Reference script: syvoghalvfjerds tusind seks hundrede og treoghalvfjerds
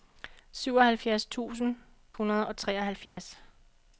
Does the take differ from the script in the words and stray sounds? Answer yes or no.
yes